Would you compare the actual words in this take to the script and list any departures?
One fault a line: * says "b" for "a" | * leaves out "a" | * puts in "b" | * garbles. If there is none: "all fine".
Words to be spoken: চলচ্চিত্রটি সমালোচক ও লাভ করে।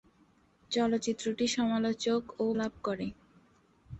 all fine